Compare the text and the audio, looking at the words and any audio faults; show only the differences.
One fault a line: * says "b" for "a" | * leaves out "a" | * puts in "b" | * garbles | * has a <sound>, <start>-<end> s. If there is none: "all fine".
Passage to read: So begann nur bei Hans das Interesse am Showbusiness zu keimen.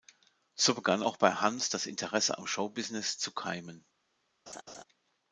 * says "auch" for "nur"
* has a laugh, 4.5-4.8 s